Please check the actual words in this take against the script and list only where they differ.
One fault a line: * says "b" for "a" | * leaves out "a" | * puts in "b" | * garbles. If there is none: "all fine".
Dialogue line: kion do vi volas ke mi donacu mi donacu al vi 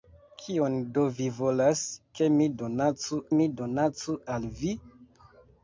all fine